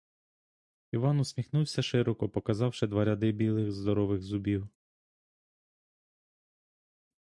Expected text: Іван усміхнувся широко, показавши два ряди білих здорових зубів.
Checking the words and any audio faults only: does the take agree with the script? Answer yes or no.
yes